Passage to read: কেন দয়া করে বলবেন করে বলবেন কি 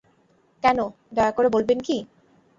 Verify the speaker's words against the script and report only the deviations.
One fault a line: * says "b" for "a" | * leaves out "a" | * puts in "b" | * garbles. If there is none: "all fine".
* leaves out "করে বলবেন"